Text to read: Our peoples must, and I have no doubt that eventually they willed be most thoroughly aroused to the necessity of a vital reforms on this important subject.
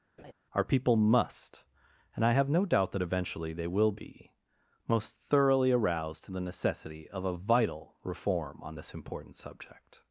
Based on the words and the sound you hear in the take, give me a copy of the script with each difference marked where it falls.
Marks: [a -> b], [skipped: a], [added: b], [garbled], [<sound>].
[laugh] Our [peoples -> people] must, and I have no doubt that eventually they [willed -> will] be most thoroughly aroused to the necessity of a vital [reforms -> reform] on this important subject.